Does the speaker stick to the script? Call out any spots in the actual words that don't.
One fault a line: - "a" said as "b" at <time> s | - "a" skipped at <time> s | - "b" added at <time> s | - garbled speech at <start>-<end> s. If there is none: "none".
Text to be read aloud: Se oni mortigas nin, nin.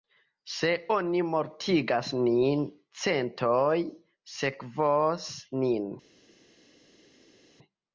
- "centoj sekvos" added at 3.0 s